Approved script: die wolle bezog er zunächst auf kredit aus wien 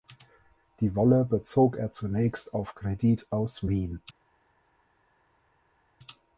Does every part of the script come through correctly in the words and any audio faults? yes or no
yes